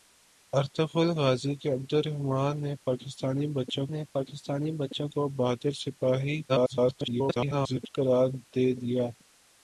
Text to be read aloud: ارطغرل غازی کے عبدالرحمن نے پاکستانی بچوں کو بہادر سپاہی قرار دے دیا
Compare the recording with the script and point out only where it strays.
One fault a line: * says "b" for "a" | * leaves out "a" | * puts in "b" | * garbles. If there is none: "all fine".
* puts in "نے پاکستانی بچوں"
* garbles